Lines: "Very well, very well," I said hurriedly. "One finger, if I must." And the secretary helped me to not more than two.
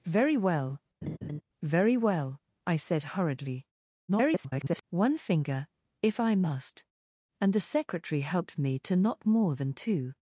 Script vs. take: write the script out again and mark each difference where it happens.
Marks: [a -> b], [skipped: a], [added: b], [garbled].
"Very well, very well," I said hurriedly. [garbled] "One finger, if I must." And the secretary helped me to not more than two.